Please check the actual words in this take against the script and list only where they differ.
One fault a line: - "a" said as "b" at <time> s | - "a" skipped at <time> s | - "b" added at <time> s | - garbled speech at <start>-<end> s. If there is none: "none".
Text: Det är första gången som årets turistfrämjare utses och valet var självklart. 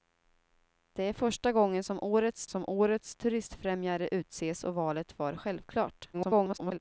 - "som årets" added at 2.5 s
- garbled speech at 6.1-6.8 s